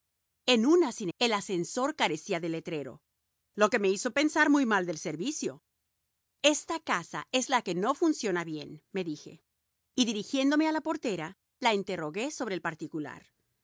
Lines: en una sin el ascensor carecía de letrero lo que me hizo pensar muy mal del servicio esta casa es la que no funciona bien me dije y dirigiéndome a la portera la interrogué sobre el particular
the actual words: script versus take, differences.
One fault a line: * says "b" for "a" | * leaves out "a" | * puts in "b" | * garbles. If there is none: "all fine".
all fine